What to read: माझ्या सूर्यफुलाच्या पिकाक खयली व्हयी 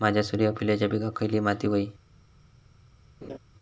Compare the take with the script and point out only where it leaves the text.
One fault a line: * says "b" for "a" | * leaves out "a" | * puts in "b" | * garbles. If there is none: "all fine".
* puts in "माती"